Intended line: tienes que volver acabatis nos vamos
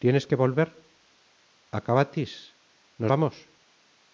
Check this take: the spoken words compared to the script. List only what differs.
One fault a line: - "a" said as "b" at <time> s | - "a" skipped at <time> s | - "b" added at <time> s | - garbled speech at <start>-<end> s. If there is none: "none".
none